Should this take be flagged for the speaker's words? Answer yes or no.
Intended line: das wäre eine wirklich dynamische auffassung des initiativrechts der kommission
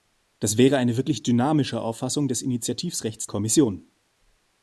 yes